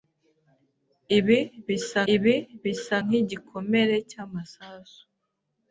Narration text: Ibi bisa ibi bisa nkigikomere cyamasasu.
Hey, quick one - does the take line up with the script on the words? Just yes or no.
yes